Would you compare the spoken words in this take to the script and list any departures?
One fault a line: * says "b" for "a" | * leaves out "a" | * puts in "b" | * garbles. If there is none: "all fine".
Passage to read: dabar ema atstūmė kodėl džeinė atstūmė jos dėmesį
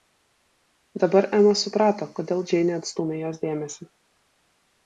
* says "suprato" for "atstūmė"